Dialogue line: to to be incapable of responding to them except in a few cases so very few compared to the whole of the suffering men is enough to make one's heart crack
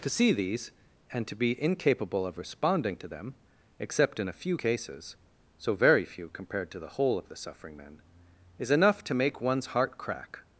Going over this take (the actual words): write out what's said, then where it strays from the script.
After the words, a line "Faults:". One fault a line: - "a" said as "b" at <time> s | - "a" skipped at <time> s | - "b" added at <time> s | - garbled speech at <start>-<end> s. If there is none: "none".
to see these and to be incapable of responding to them except in a few cases so very few compared to the whole of the suffering men is enough to make one's heart crack
Faults:
- "see these and" added at 0.1 s